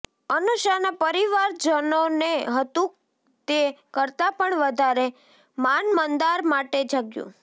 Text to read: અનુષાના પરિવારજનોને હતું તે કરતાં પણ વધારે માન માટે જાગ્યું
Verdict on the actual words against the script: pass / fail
fail